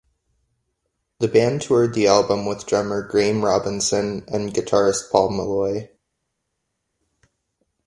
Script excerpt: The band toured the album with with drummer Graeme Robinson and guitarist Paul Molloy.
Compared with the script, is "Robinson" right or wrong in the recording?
right